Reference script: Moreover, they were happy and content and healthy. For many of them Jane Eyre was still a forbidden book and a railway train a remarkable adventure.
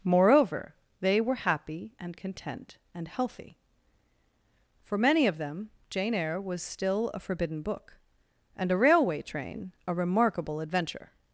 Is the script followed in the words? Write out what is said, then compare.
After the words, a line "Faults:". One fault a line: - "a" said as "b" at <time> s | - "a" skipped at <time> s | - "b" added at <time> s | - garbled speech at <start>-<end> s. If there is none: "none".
Moreover, they were happy and content and healthy. For many of them Jane Eyre was still a forbidden book and a railway train a remarkable adventure.
Faults:
none